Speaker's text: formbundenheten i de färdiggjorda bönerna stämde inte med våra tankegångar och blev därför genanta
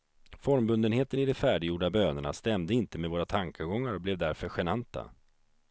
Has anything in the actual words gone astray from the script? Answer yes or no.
no